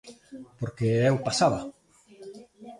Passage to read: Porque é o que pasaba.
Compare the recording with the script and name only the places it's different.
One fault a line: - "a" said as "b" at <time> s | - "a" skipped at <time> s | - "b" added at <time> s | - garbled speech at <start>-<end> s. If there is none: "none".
- "que" skipped at 1.2 s